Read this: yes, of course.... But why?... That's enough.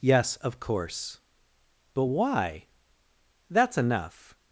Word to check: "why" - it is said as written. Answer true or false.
true